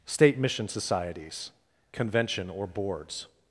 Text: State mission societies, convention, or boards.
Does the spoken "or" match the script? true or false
true